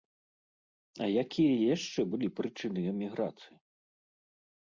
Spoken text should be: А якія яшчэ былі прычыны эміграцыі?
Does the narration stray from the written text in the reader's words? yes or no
no